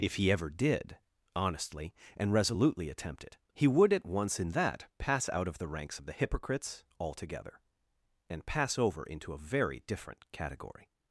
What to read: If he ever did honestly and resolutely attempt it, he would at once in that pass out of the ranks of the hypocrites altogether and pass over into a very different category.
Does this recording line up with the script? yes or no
yes